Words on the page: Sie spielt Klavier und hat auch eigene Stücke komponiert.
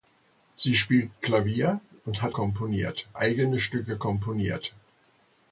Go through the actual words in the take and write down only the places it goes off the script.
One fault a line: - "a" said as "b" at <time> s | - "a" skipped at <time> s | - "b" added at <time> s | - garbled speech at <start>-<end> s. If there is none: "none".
- "auch" said as "komponiert" at 2.3 s